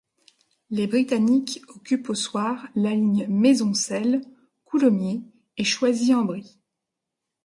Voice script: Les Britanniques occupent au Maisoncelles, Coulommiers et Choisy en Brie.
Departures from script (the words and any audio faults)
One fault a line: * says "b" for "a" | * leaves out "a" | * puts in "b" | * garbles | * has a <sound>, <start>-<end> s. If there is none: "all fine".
* puts in "soir la ligne"